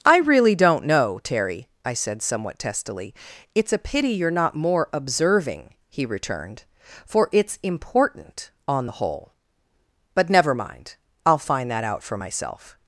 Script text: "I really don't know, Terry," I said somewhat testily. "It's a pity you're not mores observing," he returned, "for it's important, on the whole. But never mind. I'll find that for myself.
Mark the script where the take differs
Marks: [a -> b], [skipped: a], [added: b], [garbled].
"I really don't know, Terry," I said somewhat testily. "It's a pity you're not [mores -> more] observing," he returned, "for it's important, on the whole. But never mind. I'll find that [added: out] for myself.